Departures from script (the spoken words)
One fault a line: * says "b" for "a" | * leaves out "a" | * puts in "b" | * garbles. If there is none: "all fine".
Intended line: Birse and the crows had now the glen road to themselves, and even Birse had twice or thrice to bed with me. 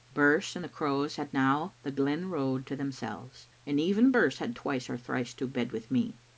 all fine